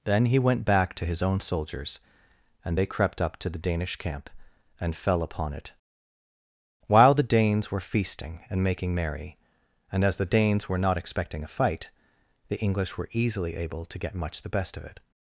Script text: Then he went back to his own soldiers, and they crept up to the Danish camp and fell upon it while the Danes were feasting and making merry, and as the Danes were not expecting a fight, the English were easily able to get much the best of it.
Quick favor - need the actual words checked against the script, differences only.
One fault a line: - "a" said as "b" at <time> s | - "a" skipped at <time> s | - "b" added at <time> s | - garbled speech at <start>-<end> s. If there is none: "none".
none